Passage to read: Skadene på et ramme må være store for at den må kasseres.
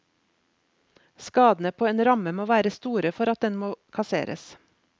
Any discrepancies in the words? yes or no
yes